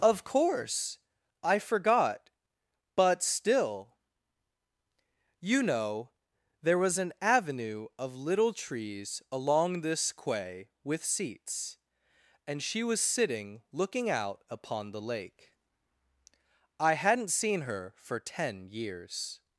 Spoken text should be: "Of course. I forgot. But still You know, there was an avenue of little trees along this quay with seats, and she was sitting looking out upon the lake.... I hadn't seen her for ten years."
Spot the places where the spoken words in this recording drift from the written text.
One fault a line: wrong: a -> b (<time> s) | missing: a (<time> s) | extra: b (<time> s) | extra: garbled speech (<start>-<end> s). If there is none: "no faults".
no faults